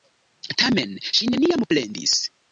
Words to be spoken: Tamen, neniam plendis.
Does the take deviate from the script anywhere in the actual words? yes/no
yes